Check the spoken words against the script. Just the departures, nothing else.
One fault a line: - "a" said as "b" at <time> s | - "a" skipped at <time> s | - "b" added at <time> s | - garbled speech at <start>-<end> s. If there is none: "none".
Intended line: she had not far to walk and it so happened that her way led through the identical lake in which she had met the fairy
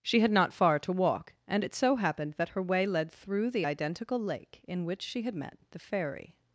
none